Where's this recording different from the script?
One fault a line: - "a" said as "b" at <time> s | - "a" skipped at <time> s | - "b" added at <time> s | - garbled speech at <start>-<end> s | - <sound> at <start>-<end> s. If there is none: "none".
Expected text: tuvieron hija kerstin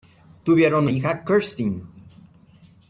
none